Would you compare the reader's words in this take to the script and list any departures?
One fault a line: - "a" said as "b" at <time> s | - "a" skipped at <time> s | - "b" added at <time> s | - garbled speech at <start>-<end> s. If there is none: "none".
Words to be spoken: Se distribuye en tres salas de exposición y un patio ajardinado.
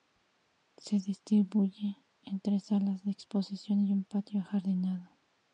none